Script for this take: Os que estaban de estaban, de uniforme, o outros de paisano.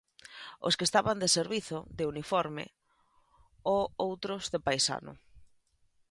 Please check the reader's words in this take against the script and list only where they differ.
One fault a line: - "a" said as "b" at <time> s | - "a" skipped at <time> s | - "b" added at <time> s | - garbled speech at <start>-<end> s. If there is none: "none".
- "estaban" said as "servizo" at 1.4 s